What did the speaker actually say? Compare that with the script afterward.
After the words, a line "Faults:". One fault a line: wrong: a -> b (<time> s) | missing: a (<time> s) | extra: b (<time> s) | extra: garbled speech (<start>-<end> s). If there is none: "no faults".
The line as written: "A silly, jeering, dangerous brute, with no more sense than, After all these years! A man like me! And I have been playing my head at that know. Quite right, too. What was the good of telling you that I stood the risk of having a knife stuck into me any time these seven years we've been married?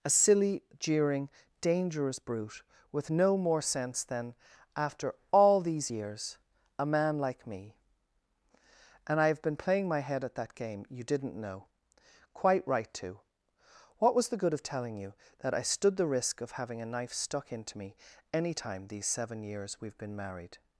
"A silly, jeering, dangerous brute, with no more sense than, After all these years! A man like me! And I have been playing my head at that game. You didn't know. Quite right, too. What was the good of telling you that I stood the risk of having a knife stuck into me any time these seven years we've been married?
Faults:
extra: game You didn't (10.5 s)